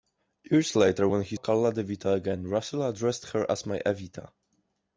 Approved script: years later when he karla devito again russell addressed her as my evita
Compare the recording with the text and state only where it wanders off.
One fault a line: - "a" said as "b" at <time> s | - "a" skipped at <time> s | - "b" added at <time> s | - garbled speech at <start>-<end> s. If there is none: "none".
none